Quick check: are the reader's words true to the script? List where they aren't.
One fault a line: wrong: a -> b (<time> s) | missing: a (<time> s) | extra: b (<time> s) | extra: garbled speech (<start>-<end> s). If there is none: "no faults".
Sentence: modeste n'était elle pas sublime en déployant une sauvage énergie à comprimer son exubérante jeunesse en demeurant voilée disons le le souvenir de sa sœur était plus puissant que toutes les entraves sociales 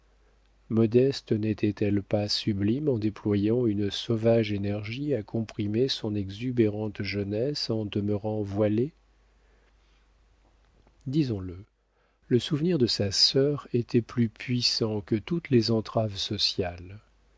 no faults